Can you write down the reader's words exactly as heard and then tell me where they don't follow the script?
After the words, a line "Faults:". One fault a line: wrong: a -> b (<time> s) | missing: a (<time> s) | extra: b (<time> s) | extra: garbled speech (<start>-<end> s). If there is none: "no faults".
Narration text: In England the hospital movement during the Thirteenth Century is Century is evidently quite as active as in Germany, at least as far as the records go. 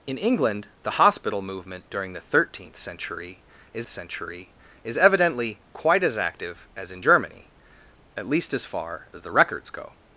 In England the hospital movement during the Thirteenth Century is Century is evidently quite as active as in Germany, at least as far as the records go.
Faults:
no faults